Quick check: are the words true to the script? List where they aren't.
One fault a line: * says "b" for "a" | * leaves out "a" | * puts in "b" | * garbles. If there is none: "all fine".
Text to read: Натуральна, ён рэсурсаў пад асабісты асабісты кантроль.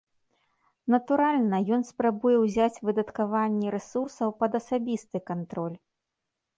* puts in "спрабуе ўзяць выдаткаванне"
* leaves out "асабісты"